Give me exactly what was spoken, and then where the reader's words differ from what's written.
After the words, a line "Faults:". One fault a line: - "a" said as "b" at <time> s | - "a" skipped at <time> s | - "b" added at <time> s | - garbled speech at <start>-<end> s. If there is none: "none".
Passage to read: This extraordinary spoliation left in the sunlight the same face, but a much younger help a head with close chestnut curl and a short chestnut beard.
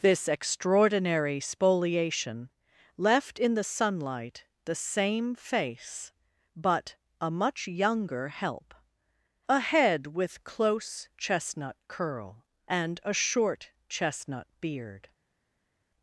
This extraordinary spoliation left in the sunlight the same face, but a much younger help a head with close chestnut curl and a short chestnut beard.
Faults:
none